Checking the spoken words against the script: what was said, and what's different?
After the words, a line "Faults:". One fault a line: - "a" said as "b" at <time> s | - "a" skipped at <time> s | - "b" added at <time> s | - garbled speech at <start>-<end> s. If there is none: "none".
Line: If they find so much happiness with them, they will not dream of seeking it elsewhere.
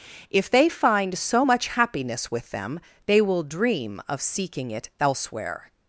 If they find so much happiness with them, they will dream of seeking it elsewhere.
Faults:
- "not" skipped at 3.4 s